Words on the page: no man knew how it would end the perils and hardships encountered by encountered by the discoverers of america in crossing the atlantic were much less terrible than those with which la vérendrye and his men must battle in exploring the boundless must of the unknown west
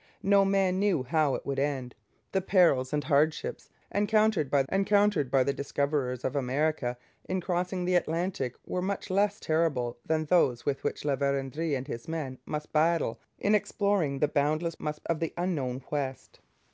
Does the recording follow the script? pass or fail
pass